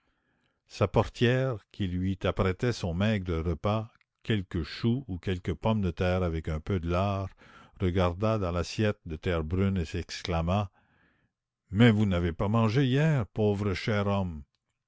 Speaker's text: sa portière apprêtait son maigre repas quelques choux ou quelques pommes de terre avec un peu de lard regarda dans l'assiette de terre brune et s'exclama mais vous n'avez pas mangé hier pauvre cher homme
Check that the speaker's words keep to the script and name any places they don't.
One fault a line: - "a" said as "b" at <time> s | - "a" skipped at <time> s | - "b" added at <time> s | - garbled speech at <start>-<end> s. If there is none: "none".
- "qui lui" added at 1.7 s